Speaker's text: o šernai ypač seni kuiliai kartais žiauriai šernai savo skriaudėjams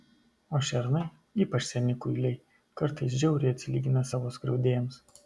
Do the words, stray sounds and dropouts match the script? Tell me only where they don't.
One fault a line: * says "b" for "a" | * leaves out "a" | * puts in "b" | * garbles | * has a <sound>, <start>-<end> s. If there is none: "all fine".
* says "atsilygina" for "šernai"